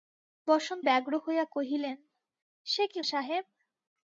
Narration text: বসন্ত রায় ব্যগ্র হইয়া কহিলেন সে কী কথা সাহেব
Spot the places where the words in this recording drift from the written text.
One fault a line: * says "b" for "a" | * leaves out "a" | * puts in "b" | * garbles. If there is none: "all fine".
* leaves out "রায়"
* leaves out "কথা"